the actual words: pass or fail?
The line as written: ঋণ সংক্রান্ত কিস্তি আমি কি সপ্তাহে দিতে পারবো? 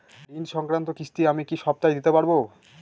pass